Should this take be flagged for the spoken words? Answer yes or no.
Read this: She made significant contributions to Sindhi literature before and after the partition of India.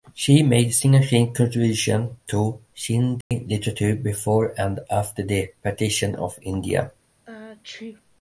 no